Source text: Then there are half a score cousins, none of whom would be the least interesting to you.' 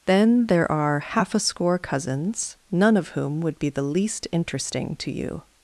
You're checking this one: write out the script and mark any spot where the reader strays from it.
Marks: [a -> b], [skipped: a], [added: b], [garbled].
Then there are half a score cousins, none of whom would be the least interesting to you.'